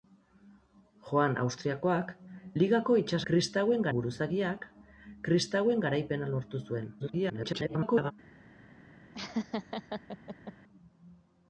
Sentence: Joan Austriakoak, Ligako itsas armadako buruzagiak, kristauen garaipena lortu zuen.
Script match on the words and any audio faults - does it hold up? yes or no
no